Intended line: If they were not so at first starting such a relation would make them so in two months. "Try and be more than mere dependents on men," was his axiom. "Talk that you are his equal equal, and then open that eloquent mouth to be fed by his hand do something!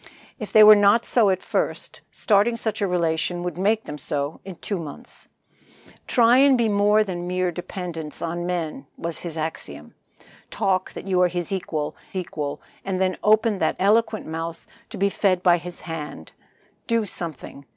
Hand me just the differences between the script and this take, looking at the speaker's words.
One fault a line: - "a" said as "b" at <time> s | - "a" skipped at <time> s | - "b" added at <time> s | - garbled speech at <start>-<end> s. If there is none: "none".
none